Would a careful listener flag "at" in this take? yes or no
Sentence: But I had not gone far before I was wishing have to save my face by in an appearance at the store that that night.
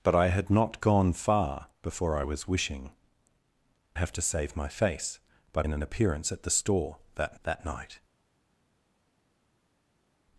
no